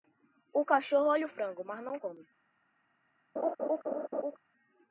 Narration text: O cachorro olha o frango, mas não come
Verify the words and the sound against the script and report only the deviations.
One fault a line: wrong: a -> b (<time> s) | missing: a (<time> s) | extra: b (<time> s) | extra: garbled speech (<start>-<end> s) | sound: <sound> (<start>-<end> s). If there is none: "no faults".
sound: laugh (3.4-4.4 s)